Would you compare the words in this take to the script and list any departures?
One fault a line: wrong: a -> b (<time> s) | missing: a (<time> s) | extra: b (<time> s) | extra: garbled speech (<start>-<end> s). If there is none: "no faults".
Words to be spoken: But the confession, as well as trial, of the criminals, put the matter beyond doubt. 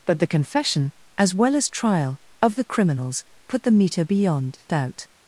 wrong: matter -> meter (3.7 s)